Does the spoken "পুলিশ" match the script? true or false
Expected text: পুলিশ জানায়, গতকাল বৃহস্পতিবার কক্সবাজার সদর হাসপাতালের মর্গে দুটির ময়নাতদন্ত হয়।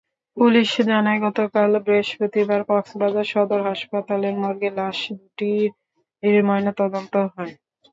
true